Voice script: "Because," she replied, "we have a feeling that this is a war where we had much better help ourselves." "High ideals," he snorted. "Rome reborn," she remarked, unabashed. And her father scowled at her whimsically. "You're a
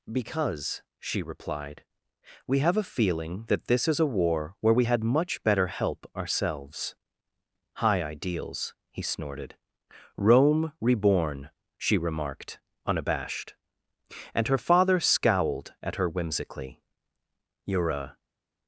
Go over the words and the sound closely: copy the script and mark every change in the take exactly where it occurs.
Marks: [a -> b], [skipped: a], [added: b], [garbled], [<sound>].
"Because," she replied, "we have a feeling that this is a war where we had much better help ourselves." "High ideals," he snorted. "Rome reborn," she remarked, unabashed. And her father scowled at her whimsically. "You're a